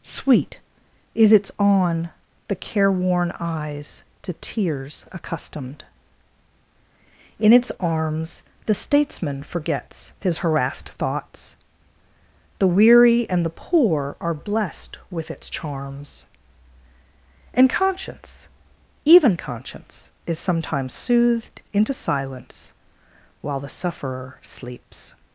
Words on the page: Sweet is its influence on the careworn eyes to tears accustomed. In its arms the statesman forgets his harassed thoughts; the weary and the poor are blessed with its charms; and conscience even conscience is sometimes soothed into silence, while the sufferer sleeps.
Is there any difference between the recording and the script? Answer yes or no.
yes